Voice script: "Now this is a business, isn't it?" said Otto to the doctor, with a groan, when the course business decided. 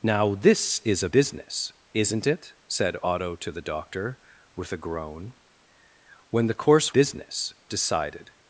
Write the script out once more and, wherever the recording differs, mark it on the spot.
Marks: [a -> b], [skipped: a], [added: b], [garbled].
"Now this is a business, isn't it?" said Otto to the doctor, with a groan, when the course business decided.